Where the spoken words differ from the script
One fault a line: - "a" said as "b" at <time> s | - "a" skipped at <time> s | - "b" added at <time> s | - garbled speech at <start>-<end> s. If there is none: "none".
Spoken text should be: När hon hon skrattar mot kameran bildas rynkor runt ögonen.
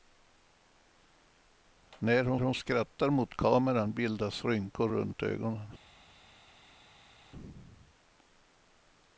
none